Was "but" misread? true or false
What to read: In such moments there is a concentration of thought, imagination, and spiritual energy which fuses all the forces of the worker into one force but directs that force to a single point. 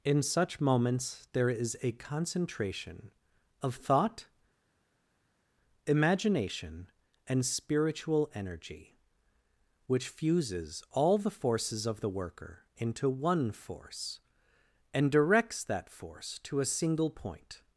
true